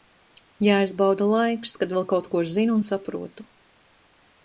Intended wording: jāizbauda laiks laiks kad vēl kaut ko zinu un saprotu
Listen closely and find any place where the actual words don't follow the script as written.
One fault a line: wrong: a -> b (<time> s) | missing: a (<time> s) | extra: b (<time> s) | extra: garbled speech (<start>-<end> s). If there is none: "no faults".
missing: laiks (1.8 s)